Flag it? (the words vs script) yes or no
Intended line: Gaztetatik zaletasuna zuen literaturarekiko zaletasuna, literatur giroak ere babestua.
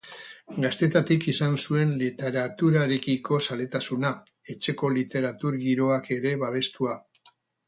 yes